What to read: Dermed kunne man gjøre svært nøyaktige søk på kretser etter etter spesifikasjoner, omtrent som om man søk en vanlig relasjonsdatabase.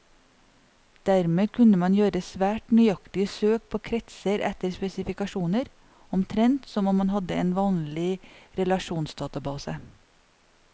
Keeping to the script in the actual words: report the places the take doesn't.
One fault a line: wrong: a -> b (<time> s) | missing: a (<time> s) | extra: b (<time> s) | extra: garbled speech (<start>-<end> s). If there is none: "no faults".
missing: etter (4.7 s)
wrong: søk -> hadde (7.2 s)